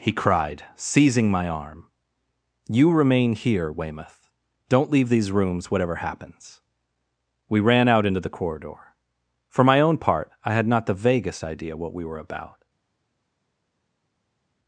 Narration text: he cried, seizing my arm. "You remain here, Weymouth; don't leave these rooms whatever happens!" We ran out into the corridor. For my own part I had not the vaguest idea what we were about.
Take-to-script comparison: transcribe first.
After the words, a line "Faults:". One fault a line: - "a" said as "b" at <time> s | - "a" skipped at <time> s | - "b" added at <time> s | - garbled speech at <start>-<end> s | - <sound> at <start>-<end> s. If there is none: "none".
he cried, seizing my arm. "You remain here, Weymouth; don't leave these rooms whatever happens!" We ran out into the corridor. For my own part I had not the vaguest idea what we were about.
Faults:
none